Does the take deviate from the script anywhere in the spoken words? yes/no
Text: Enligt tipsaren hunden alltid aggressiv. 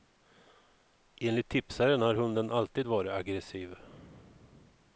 yes